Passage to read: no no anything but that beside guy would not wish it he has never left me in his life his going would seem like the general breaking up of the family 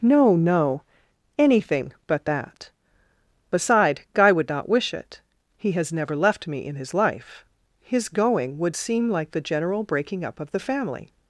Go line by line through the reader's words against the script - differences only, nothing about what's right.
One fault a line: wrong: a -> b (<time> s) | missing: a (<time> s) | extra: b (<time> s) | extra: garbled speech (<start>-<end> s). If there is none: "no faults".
no faults